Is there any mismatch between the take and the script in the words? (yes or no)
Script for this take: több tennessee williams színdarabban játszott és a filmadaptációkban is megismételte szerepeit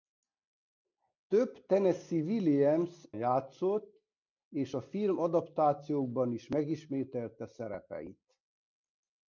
yes